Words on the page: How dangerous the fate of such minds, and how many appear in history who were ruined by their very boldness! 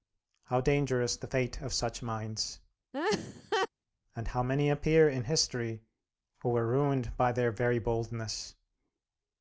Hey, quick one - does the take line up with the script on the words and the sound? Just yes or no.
no